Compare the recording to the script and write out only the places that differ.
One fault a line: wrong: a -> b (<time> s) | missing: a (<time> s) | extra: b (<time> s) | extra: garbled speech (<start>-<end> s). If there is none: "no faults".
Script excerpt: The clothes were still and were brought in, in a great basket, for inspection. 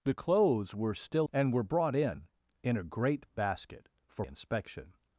no faults